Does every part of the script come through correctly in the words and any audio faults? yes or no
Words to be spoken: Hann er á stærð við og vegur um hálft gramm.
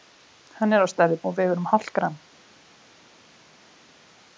yes